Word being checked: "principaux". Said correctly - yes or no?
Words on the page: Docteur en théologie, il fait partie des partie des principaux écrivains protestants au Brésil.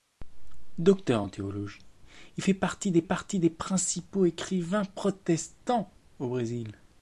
yes